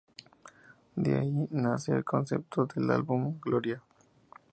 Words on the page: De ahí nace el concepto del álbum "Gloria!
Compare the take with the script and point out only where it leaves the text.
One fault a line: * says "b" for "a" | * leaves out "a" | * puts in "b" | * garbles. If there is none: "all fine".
all fine